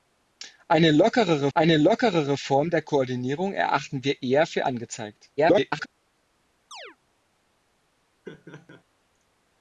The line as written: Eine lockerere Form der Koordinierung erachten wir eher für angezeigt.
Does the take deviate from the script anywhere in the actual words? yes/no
yes